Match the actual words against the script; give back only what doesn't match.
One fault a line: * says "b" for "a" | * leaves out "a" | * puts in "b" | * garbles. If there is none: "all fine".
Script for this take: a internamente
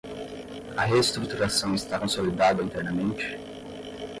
* puts in "reestruturação está consolidada"